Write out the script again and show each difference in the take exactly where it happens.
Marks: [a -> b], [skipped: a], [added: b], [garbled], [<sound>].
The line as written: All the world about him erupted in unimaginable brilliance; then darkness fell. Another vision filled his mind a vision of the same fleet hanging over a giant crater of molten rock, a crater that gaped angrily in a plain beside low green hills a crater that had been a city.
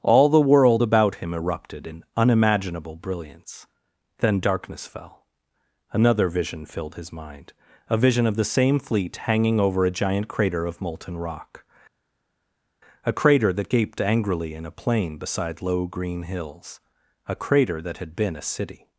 All the world about him erupted in unimaginable brilliance; then darkness fell. Another vision filled his mind a vision of the same fleet hanging over a giant crater of molten rock, a crater that gaped angrily in a plain beside low green hills a crater that had been a city.